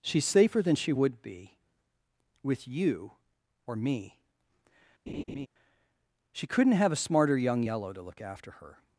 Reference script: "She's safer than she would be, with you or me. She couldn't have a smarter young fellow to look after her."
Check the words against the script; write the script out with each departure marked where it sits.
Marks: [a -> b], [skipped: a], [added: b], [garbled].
"She's safer than she would be, with you or me. She couldn't have a smarter young [fellow -> yellow] to look after her."